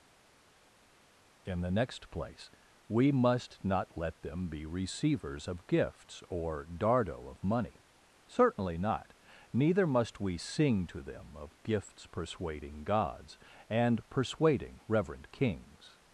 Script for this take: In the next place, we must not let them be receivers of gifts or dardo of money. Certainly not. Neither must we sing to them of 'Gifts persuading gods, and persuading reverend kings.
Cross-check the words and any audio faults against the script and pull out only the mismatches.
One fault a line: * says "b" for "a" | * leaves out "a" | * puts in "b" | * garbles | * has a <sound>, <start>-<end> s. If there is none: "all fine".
all fine